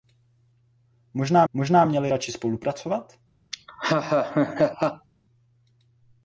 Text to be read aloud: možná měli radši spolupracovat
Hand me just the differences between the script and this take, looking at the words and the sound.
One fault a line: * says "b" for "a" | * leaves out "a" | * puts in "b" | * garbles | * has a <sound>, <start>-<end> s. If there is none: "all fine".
* puts in "možná"
* has a laugh, 3.5-5.1 s